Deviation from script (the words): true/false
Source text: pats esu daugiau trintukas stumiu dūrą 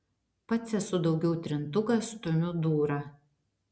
false